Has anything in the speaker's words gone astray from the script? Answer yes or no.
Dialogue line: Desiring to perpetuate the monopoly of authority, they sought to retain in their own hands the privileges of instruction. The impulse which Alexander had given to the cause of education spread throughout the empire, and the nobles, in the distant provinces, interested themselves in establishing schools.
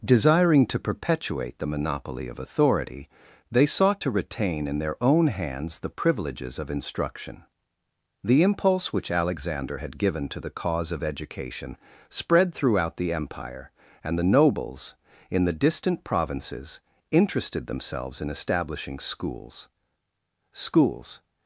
yes